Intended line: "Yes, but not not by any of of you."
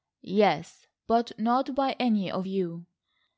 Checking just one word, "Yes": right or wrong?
right